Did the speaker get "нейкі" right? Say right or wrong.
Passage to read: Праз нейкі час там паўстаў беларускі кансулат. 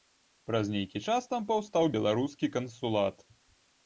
right